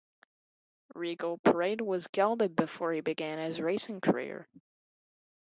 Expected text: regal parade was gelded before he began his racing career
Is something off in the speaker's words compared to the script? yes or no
no